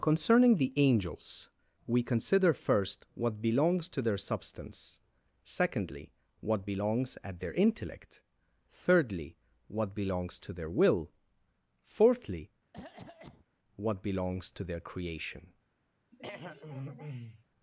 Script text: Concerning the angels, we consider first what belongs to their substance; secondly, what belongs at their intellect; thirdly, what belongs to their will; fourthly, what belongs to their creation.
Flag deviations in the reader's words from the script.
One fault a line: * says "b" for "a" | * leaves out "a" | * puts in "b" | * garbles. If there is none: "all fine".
all fine